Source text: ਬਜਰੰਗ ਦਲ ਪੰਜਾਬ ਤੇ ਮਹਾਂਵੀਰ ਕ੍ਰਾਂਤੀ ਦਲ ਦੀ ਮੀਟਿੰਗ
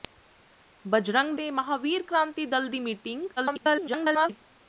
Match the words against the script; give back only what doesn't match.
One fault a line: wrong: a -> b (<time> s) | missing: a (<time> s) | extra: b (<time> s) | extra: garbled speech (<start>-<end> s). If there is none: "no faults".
missing: ਦਲ ਪੰਜਾਬ (1.4 s)
extra: garbled speech (3.4-4.4 s)